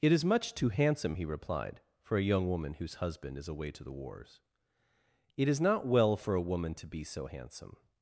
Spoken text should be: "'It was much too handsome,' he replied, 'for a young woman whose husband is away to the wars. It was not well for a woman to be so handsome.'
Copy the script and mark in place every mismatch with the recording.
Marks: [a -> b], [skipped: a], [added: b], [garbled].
"'It [was -> is] much too handsome,' he replied, 'for a young woman whose husband is away to the wars. It [was -> is] not well for a woman to be so handsome.'